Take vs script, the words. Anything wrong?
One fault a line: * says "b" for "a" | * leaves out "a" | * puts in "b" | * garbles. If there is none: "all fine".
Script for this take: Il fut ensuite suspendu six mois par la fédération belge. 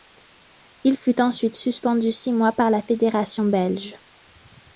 all fine